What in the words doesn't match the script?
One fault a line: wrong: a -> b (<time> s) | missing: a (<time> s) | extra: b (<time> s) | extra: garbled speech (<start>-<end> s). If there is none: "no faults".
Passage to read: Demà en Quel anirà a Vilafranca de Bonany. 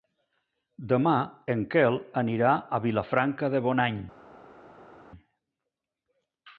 no faults